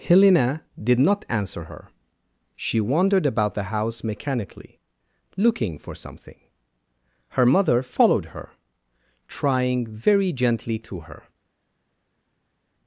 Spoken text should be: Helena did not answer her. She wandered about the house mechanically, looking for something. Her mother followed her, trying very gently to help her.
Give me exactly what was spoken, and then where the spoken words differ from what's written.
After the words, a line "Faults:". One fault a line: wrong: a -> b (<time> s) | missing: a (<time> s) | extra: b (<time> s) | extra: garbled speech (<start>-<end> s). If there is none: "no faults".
Helena did not answer her. She wandered about the house mechanically, looking for something. Her mother followed her, trying very gently to her.
Faults:
missing: help (11.0 s)